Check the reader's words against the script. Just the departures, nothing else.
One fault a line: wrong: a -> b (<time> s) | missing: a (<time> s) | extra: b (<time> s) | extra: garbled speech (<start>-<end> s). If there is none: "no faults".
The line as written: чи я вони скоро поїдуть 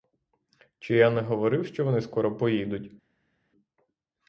extra: не говорив що (1.1 s)